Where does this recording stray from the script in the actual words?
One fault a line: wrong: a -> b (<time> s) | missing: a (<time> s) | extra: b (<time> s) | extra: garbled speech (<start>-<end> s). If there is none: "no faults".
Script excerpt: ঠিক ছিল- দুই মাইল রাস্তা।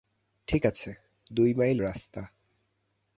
wrong: ছিল -> আছে (0.7 s)